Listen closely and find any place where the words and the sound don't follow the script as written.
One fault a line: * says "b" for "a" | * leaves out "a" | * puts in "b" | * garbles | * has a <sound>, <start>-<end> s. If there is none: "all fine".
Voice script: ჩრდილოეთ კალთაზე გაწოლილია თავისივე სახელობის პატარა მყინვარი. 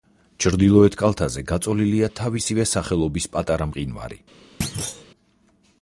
* has a thud, 4.6-5.1 s